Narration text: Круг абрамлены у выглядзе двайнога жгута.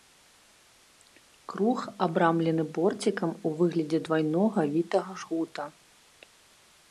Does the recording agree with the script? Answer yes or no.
no